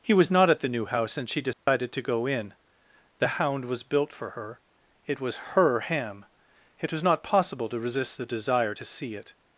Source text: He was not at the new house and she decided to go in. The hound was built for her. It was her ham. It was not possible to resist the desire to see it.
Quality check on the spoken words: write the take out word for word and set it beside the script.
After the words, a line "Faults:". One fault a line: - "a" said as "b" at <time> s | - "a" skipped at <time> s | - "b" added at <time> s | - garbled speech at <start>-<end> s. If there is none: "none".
He was not at the new house and she decided to go in. The hound was built for her. It was her ham. It was not possible to resist the desire to see it.
Faults:
none